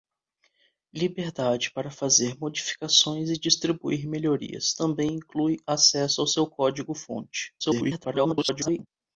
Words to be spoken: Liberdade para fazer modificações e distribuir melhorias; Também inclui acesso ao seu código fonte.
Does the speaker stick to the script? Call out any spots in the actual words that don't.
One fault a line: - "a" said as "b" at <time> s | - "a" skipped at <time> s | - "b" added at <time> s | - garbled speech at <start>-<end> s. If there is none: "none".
- garbled speech at 7.6-8.9 s